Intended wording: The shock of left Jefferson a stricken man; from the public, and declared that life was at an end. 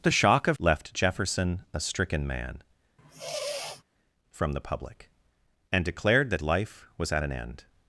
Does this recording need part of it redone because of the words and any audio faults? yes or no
yes